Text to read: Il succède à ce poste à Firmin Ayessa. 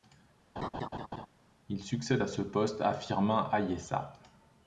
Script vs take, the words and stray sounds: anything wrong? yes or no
yes